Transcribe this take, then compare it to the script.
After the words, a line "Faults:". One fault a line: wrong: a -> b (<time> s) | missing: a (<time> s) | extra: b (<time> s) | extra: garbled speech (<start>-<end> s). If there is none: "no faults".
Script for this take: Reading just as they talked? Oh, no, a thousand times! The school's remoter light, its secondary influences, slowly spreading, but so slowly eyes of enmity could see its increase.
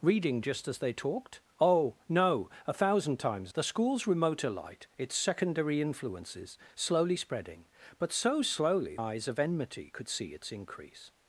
Reading just as they talked? Oh, no, a thousand times! The school's remoter light, its secondary influences, slowly spreading, but so slowly eyes of enmity could see its increase.
Faults:
no faults